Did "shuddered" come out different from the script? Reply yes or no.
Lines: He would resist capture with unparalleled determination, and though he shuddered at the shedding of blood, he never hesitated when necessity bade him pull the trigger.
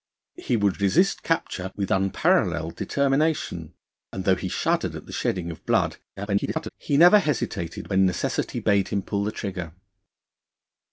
no